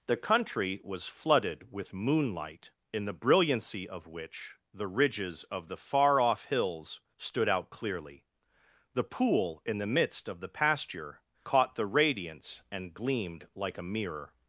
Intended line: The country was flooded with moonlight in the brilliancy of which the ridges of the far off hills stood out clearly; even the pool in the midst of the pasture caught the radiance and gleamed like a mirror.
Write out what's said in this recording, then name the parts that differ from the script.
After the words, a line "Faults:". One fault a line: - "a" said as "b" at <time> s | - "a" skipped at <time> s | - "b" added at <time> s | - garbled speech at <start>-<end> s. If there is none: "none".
The country was flooded with moonlight in the brilliancy of which the ridges of the far off hills stood out clearly; the pool in the midst of the pasture caught the radiance and gleamed like a mirror.
Faults:
- "even" skipped at 8.2 s